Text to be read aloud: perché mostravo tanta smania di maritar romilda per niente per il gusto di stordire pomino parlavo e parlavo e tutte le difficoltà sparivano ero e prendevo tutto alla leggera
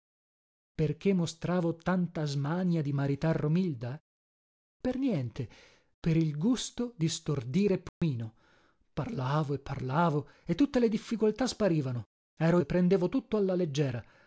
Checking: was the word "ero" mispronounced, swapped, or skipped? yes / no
no